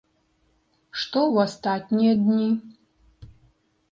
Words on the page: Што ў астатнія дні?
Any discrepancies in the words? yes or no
no